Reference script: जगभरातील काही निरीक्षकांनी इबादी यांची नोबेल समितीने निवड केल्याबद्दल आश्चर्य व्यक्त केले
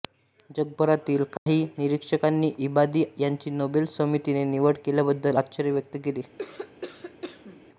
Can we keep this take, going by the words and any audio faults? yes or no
no